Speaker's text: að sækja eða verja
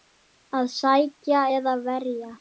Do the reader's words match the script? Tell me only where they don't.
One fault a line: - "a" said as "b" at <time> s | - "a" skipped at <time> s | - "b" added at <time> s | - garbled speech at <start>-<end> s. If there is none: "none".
none